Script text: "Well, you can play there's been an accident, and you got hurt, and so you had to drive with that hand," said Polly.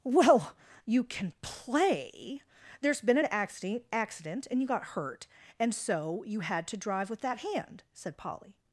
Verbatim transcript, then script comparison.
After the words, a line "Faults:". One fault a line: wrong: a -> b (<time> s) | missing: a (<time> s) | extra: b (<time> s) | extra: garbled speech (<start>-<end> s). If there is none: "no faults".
"Well, you can play there's been an accident accident, and you got hurt, and so you had to drive with that hand," said Polly.
Faults:
extra: accident (3.9 s)